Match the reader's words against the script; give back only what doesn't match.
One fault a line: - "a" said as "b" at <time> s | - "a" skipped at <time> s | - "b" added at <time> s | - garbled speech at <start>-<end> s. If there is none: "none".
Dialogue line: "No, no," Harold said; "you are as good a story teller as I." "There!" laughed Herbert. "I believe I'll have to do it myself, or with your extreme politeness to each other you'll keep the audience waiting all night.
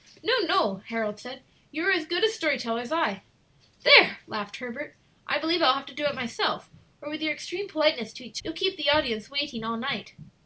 - "other" skipped at 8.4 s